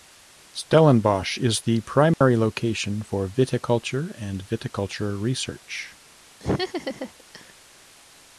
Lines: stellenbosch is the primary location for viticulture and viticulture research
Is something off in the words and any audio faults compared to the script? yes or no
yes